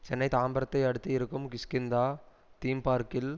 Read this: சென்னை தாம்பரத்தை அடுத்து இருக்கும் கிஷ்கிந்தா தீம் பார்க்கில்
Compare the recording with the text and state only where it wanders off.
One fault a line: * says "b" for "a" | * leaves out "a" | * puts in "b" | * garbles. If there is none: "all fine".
all fine